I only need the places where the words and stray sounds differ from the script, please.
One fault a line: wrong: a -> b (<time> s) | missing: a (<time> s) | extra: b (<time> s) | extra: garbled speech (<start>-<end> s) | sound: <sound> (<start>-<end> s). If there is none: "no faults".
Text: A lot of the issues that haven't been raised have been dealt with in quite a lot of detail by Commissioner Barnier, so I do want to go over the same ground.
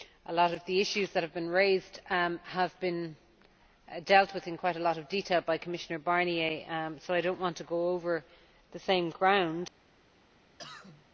wrong: haven't -> have (1.2 s)
extra: not (7.3 s)
sound: cough (10.6-11.1 s)